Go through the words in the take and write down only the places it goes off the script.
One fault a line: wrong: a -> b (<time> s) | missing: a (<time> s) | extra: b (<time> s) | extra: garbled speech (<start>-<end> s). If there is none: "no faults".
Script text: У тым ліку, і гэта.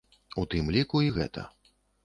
no faults